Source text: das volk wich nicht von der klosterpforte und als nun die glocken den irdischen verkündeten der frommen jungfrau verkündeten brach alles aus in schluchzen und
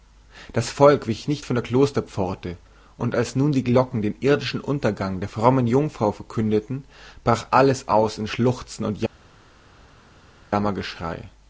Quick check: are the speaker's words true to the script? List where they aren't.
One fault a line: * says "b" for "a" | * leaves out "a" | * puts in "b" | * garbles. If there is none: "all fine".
* says "untergang" for "verkündeten"